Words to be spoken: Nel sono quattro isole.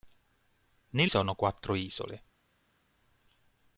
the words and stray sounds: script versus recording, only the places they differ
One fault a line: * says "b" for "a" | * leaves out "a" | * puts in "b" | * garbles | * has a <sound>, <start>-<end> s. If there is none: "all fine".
all fine